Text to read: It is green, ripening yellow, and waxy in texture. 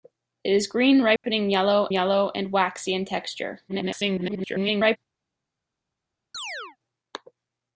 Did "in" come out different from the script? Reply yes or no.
no